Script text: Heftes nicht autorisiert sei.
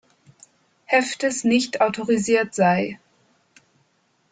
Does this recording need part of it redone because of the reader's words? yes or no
no